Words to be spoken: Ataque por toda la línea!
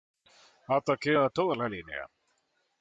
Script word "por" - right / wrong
wrong